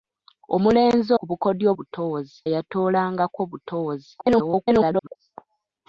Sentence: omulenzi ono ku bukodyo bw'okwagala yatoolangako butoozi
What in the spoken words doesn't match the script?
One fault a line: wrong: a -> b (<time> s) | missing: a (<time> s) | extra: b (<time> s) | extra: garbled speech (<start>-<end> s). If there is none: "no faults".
missing: ono (1.1 s)
wrong: bw'okwagala -> butoozi (1.7 s)
extra: garbled speech (4.2-5.2 s)